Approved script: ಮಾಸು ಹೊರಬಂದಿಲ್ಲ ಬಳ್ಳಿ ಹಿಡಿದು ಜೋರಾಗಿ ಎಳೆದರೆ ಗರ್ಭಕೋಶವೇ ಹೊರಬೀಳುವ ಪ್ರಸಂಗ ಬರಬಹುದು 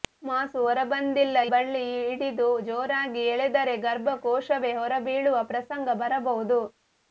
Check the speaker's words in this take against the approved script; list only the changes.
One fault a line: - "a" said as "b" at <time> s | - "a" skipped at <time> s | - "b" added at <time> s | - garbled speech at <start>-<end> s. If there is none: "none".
none